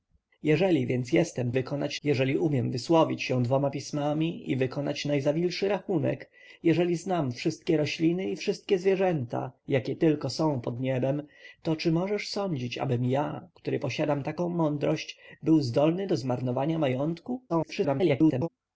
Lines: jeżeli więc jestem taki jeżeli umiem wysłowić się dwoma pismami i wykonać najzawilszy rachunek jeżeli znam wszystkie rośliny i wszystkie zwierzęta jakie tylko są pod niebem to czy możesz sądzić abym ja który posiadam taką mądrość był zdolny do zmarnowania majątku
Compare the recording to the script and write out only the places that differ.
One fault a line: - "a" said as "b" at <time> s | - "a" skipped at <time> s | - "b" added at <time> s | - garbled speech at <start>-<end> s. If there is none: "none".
- "taki" said as "wykonać" at 1.5 s
- garbled speech at 17.5-18.5 s